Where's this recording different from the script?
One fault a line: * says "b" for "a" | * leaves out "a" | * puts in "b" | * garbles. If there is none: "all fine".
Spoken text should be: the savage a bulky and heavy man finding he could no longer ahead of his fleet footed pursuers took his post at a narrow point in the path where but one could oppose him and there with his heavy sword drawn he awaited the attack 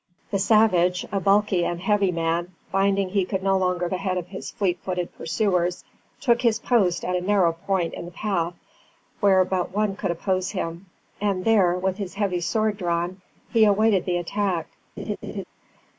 all fine